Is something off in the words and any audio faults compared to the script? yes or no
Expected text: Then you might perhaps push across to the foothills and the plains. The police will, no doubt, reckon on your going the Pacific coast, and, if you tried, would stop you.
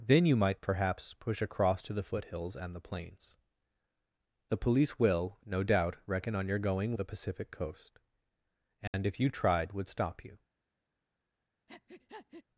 yes